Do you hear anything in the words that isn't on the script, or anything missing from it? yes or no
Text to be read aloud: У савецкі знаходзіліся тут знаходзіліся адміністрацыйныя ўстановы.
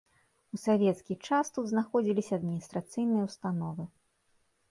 yes